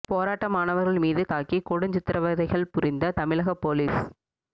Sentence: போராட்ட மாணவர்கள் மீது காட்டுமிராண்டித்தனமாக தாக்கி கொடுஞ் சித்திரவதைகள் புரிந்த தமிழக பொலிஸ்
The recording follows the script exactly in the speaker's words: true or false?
false